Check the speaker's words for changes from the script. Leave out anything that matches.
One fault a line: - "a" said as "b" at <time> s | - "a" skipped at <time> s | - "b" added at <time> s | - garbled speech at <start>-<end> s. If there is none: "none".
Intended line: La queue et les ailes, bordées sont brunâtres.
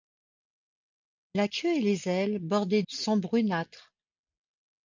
none